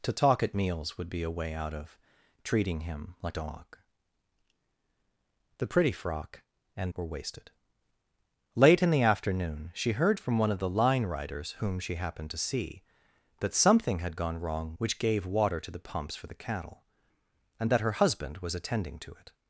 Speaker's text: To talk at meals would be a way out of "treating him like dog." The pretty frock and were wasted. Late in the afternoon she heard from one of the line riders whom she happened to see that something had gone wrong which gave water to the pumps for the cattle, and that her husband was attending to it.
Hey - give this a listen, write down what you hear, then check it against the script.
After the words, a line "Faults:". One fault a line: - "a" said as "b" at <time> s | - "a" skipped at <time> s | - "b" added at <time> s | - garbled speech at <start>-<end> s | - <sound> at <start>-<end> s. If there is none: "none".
To talk at meals would be a way out of "treating him like dog." The pretty frock and were wasted. Late in the afternoon she heard from one of the line riders whom she happened to see that something had gone wrong which gave water to the pumps for the cattle, and that her husband was attending to it.
Faults:
none